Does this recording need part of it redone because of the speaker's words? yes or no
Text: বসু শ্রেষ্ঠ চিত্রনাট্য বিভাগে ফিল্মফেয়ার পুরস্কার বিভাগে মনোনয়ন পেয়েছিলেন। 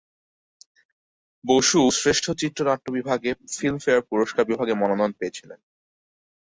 no